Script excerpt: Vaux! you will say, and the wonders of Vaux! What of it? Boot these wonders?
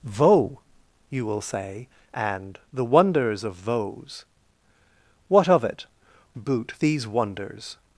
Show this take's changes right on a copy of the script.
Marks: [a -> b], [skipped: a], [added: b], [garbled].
Vaux! you will say, and the wonders of Vaux! What of it? Boot these wonders?